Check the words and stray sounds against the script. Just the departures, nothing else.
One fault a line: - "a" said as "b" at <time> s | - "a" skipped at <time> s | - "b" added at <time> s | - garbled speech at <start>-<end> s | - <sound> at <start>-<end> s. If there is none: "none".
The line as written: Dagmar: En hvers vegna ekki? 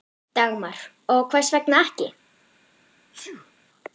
- "En" said as "Og" at 1.1 s
- sneeze at 3.1-3.5 s